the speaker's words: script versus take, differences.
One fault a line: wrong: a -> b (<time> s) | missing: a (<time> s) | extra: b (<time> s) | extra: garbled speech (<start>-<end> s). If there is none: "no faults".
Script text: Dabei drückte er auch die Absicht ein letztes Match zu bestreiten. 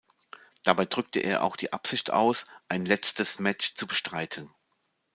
extra: aus (2.1 s)